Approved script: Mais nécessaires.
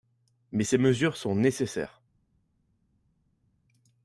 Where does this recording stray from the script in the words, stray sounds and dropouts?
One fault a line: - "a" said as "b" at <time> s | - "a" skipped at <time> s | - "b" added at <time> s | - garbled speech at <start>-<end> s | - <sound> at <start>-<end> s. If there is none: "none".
- "ces mesures sont" added at 0.6 s